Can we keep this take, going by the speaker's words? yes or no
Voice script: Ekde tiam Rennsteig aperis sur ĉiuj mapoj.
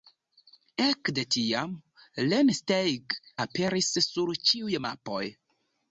yes